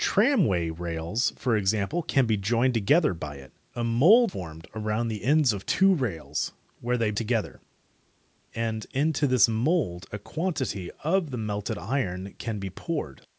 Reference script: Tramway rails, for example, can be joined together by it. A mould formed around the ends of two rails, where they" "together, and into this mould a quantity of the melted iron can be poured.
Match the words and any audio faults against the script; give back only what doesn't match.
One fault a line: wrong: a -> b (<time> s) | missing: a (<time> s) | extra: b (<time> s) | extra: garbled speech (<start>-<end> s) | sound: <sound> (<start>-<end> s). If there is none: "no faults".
no faults